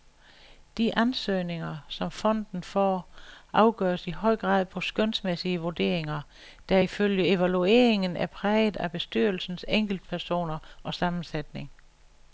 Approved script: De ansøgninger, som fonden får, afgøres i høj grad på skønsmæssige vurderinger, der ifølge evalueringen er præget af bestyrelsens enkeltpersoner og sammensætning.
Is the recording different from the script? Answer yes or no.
no